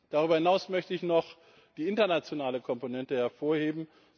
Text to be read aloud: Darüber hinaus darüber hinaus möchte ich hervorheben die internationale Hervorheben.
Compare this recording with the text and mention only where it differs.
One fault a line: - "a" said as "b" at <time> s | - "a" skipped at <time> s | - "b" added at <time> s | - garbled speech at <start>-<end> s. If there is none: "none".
- "darüber hinaus" skipped at 0.7 s
- "hervorheben" said as "noch" at 1.0 s
- "Komponente" added at 2.6 s